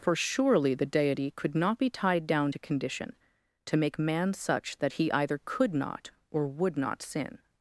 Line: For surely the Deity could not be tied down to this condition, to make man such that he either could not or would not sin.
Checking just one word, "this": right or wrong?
wrong